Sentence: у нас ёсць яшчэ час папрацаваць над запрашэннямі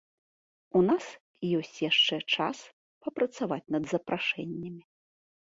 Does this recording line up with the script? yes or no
yes